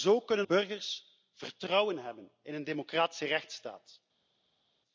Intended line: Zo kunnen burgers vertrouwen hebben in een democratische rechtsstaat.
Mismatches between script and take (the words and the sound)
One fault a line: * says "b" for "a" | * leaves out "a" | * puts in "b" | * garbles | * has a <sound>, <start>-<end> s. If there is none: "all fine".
all fine